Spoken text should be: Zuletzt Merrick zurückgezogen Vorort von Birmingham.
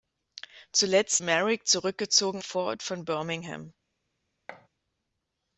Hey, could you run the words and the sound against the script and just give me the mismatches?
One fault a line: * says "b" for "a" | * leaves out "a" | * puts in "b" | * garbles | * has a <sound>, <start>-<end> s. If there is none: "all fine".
* has a thud, 4.5-4.7 s